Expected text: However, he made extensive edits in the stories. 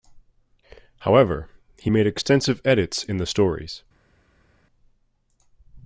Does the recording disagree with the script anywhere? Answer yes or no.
no